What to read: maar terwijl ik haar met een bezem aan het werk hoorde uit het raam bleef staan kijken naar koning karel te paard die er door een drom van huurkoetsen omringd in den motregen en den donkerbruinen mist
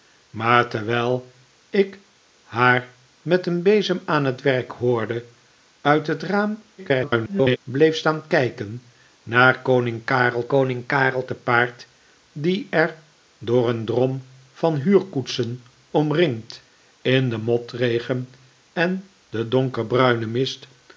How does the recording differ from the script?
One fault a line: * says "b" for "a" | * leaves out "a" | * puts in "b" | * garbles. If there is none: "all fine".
* garbles
* puts in "koning karel"